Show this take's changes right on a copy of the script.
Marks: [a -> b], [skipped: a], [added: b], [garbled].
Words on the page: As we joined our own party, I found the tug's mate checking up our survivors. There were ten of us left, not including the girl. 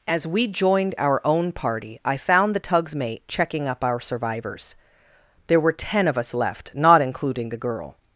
As we joined our own party, I found the tug's mate checking up our survivors. There were ten of us left, not including the girl.